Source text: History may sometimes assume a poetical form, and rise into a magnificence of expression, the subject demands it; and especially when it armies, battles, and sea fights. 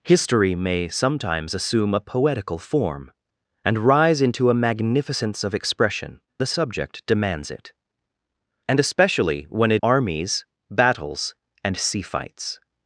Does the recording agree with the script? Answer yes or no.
yes